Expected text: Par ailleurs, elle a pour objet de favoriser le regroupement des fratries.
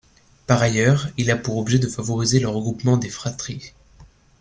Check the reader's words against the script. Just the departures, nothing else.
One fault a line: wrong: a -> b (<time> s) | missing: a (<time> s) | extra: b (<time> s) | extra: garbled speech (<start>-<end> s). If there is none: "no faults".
wrong: elle -> il (1.2 s)